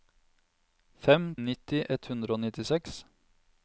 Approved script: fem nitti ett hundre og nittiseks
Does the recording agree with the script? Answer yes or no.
yes